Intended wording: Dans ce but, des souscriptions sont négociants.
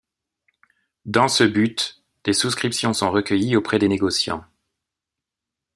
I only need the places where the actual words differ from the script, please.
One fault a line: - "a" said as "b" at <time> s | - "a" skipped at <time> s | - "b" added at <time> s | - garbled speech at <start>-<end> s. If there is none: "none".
- "recueillies auprès des" added at 3.1 s